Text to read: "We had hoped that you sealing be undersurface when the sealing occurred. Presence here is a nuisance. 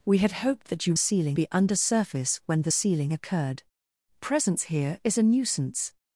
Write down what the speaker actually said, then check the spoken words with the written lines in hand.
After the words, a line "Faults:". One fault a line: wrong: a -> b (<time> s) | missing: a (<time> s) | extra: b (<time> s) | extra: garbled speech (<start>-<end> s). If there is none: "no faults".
"We had hoped that you sealing be undersurface when the sealing occurred. Presence here is a nuisance.
Faults:
no faults